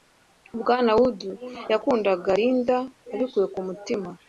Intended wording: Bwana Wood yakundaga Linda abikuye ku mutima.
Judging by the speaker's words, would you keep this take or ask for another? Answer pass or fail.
pass